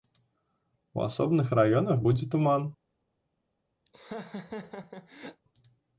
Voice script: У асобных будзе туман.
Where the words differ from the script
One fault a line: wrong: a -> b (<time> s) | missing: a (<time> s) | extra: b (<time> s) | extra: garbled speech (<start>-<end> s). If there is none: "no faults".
extra: раёнах (1.6 s)